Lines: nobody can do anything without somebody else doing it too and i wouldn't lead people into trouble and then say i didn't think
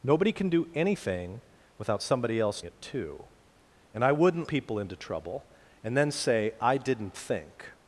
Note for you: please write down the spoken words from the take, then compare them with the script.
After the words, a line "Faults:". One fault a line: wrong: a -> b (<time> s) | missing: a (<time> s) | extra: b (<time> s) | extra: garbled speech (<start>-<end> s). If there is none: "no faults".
nobody can do anything without somebody else it too and i wouldn't people into trouble and then say i didn't think
Faults:
missing: doing (2.6 s)
missing: lead (4.5 s)